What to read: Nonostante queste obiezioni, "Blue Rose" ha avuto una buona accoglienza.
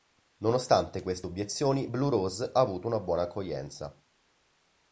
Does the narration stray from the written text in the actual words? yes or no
no